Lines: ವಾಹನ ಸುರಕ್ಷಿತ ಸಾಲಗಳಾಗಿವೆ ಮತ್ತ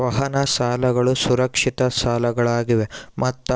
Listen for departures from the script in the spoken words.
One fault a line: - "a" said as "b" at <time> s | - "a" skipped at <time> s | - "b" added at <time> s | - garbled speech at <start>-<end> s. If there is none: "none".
- "ಸಾಲಗಳು" added at 0.5 s